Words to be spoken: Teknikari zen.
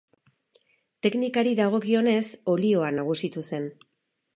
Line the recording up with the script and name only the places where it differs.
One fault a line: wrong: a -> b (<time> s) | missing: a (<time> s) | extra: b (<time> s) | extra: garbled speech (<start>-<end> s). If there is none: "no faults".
extra: dagokionez olioa nagusitu (1.6 s)